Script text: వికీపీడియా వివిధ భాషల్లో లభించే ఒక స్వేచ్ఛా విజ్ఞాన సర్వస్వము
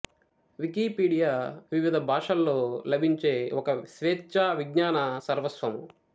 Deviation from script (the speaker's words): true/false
false